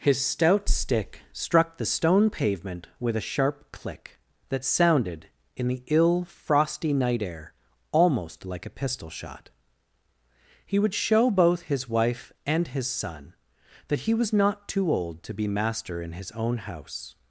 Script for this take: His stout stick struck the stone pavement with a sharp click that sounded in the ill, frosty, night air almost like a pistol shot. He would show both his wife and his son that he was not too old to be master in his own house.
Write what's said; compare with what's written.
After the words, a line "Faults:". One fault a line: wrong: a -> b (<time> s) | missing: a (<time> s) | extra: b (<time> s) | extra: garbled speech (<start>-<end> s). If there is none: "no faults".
His stout stick struck the stone pavement with a sharp click that sounded in the ill, frosty, night air almost like a pistol shot. He would show both his wife and his son that he was not too old to be master in his own house.
Faults:
no faults